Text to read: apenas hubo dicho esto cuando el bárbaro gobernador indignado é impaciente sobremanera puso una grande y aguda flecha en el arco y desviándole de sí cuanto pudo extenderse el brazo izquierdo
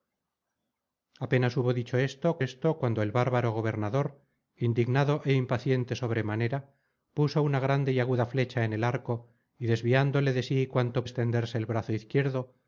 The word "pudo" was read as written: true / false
false